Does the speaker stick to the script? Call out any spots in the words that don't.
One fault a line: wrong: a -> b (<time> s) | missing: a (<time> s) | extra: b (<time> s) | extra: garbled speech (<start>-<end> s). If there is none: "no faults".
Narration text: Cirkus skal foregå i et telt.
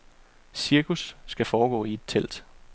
no faults